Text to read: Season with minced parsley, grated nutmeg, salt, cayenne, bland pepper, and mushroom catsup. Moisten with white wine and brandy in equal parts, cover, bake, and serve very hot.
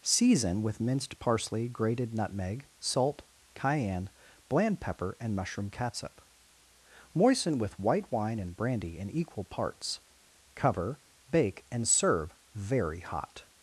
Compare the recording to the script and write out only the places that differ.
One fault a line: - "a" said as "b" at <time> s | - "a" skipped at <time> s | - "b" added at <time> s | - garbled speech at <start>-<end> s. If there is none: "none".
none